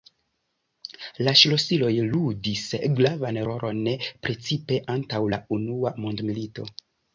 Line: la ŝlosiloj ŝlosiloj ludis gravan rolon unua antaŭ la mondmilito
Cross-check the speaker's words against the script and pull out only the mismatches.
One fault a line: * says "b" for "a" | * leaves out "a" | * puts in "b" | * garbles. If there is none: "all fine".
* leaves out "ŝlosiloj"
* says "precipe" for "unua"
* puts in "unua"